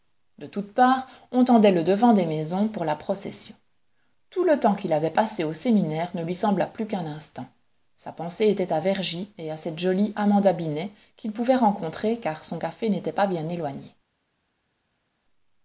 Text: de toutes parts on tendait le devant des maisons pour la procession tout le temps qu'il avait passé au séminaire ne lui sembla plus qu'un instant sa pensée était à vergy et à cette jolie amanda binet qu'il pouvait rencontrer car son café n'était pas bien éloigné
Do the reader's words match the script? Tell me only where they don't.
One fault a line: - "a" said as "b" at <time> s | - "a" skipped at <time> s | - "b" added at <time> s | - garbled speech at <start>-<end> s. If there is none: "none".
none